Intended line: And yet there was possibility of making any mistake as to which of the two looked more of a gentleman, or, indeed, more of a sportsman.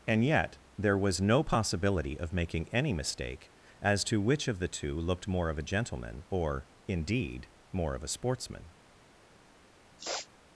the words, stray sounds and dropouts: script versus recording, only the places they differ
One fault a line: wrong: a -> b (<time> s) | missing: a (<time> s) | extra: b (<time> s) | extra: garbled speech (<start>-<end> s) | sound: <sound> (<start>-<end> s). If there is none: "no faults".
extra: no (1.2 s)
sound: sniff (10.0-10.3 s)